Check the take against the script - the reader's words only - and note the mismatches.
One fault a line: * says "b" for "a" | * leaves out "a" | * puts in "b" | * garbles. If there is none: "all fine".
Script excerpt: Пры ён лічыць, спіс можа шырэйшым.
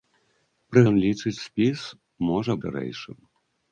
all fine